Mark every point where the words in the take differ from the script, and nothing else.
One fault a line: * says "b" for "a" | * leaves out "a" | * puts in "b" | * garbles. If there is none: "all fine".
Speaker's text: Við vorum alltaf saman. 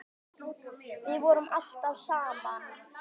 all fine